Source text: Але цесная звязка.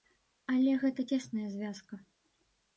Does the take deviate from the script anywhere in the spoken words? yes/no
yes